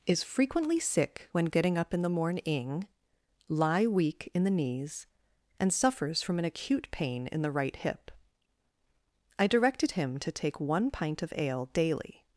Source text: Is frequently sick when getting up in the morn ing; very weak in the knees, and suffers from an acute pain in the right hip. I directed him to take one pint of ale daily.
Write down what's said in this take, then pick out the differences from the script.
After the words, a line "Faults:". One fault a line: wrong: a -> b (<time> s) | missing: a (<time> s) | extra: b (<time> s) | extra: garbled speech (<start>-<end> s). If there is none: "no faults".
Is frequently sick when getting up in the morning lie weak in the knees, and suffers from an acute pain in the right hip. I directed him to take one pint of ale daily.
Faults:
wrong: morn ing very -> morning lie (2.1 s)